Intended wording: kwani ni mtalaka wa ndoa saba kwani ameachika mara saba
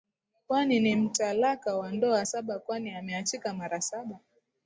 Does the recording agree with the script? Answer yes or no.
yes